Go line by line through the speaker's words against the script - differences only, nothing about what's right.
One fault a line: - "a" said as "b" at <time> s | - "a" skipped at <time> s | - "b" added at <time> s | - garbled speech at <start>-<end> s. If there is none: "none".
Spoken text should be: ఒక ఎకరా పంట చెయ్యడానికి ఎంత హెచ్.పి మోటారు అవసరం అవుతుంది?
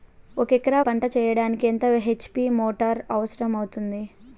none